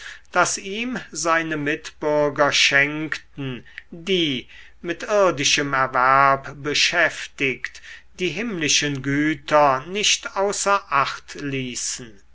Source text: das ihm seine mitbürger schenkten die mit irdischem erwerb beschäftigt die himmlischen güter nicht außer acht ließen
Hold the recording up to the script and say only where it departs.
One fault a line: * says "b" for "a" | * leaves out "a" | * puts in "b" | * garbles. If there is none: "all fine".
all fine